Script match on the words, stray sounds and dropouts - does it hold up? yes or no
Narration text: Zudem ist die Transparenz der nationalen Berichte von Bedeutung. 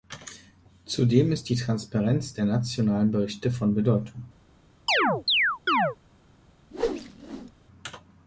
no